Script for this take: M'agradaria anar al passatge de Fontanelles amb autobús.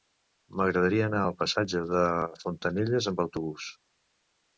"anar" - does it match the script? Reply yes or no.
yes